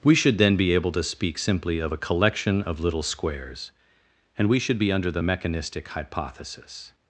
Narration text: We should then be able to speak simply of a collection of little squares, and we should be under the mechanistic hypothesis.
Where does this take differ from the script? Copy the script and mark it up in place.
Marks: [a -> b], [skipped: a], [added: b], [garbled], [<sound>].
We should then be able to speak simply of a collection of little squares, and we should be under the mechanistic hypothesis.